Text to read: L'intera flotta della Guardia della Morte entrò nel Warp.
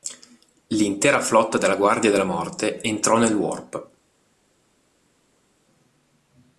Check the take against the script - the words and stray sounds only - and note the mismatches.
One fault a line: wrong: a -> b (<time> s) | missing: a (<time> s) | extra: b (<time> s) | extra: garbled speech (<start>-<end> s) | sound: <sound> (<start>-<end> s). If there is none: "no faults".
no faults